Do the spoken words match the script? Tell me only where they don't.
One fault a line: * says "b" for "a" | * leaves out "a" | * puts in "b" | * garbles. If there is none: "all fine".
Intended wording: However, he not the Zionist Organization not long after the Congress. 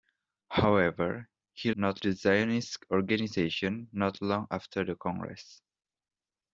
all fine